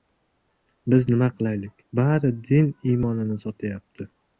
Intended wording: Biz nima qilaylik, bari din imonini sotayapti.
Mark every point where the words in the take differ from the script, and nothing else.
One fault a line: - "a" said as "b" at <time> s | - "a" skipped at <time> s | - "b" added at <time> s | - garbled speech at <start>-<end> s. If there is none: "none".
none